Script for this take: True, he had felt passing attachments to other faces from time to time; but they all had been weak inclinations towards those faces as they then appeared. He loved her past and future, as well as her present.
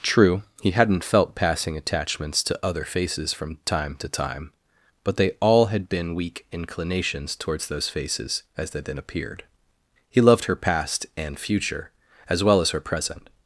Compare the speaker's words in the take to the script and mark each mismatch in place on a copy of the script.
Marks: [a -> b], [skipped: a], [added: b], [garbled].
True, he [had -> hadn't] felt passing attachments to other faces from time to time; but they all had been weak inclinations towards those faces as they then appeared. He loved her past and future, as well as her present.